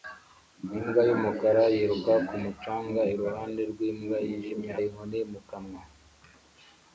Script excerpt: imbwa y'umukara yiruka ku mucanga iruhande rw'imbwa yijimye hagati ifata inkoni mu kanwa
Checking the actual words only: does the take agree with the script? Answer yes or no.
no